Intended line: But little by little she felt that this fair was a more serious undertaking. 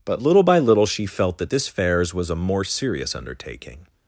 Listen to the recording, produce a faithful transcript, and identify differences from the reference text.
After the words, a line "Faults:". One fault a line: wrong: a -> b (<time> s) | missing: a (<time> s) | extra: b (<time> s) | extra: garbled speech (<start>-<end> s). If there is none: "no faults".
But little by little she felt that this fairs was a more serious undertaking.
Faults:
wrong: fair -> fairs (1.7 s)